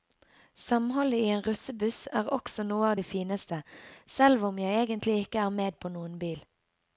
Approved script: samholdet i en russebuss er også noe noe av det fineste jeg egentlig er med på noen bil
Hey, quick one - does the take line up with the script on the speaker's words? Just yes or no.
no